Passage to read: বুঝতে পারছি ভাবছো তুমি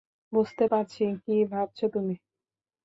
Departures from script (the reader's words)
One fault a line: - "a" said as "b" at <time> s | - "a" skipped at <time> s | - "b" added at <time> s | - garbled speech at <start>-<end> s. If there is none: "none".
- "কী" added at 1.2 s